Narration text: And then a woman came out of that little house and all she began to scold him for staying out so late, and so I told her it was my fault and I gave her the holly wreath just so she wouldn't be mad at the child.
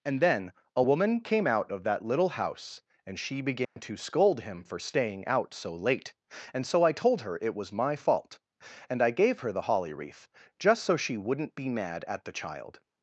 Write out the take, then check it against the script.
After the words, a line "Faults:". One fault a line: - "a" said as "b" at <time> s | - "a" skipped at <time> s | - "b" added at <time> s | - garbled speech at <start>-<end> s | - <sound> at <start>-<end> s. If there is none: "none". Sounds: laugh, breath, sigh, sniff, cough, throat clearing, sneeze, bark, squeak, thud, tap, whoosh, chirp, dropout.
And then a woman came out of that little house and she began to scold him for staying out so late, and so I told her it was my fault and I gave her the holly wreath just so she wouldn't be mad at the child.
Faults:
- "all" skipped at 3.2 s
- dropout at 3.6-3.8 s